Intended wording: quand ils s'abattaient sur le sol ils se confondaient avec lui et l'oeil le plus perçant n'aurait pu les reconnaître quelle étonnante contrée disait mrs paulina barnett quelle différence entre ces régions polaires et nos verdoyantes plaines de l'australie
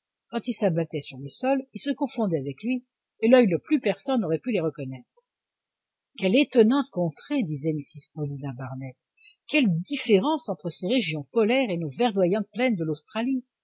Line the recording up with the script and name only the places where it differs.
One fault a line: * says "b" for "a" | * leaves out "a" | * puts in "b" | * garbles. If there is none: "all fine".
all fine